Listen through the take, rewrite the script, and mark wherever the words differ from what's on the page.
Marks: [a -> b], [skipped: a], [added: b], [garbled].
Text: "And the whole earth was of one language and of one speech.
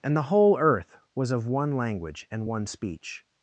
"And the whole earth was of one language and [skipped: of] one speech.